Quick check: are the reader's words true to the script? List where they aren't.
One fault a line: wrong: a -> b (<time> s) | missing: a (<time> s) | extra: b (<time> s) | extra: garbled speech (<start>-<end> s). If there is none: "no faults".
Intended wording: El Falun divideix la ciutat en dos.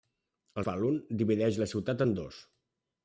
no faults